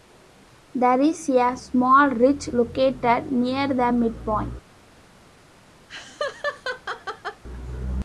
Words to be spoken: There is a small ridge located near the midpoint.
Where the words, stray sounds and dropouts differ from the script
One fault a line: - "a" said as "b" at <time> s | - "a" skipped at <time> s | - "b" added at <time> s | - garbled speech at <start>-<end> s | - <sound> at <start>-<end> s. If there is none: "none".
- laugh at 5.9-7.4 s